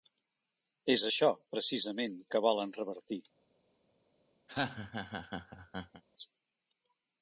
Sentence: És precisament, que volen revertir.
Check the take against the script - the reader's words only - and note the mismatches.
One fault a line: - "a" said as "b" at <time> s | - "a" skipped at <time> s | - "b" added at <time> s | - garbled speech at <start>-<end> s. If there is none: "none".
- "això" added at 1.1 s